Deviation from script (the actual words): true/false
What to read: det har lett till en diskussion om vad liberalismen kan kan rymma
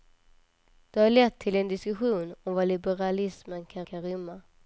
false